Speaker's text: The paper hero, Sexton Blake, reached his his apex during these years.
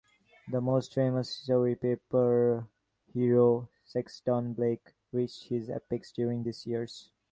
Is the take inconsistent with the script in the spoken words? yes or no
yes